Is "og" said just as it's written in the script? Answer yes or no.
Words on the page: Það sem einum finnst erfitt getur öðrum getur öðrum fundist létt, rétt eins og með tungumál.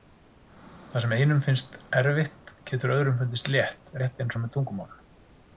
yes